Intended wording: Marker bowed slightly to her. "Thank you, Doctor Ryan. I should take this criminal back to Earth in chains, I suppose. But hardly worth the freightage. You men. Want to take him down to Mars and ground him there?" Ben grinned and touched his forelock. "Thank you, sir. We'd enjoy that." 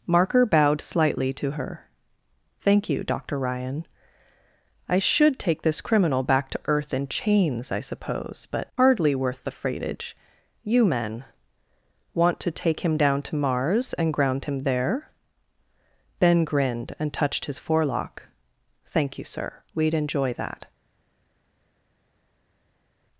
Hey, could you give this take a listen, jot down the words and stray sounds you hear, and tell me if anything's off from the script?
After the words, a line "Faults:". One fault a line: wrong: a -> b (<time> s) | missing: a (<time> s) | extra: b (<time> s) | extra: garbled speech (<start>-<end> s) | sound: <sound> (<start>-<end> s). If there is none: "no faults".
Marker bowed slightly to her. "Thank you, Doctor Ryan. I should take this criminal back to Earth in chains, I suppose. But hardly worth the freightage. You men. Want to take him down to Mars and ground him there?" Ben grinned and touched his forelock. "Thank you, sir. We'd enjoy that."
Faults:
no faults